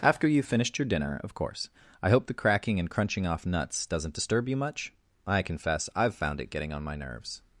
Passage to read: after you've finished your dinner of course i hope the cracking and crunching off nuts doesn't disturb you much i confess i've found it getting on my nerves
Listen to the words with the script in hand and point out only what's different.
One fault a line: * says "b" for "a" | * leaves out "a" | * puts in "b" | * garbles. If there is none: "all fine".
all fine